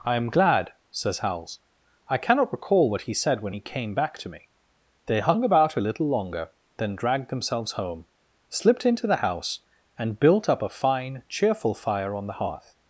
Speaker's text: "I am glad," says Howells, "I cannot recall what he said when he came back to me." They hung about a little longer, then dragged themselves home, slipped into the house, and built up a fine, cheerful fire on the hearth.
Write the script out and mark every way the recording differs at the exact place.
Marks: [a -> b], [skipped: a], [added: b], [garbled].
"I am glad," says Howells, "I cannot recall what he said when he came back to me." They hung about a little longer, then dragged themselves home, slipped into the house, and built up a fine, cheerful fire on the hearth.